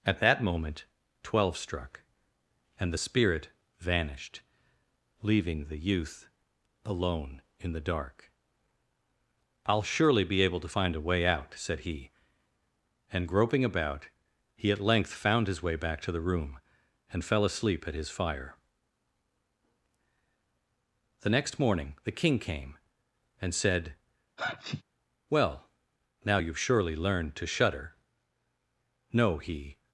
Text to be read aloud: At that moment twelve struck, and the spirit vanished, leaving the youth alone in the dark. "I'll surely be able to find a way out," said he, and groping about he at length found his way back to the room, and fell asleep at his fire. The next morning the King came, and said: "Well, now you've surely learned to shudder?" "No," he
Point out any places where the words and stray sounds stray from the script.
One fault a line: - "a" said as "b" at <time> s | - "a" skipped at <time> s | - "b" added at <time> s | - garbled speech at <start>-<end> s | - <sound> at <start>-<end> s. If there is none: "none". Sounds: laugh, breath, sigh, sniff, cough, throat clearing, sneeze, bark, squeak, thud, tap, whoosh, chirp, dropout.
- sneeze at 24.4-24.8 s